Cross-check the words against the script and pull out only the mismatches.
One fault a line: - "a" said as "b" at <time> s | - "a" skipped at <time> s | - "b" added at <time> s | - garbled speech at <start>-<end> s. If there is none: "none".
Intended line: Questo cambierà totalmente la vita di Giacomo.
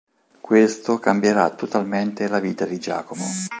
none